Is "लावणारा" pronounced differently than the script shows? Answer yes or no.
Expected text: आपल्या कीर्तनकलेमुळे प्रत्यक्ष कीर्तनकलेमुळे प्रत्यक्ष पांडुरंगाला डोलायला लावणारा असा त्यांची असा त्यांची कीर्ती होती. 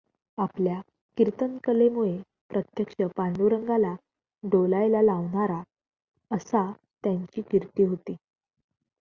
no